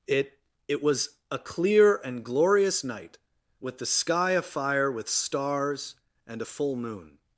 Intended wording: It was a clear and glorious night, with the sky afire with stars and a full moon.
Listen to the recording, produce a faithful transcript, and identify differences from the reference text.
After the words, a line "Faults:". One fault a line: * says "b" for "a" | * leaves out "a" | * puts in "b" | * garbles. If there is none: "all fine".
It it was a clear and glorious night, with the sky afire with stars and a full moon.
Faults:
* puts in "it"